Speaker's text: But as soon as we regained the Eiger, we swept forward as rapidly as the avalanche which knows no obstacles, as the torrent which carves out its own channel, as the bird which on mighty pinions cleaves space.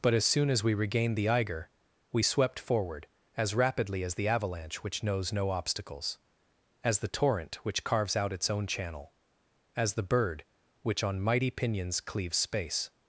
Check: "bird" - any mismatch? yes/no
no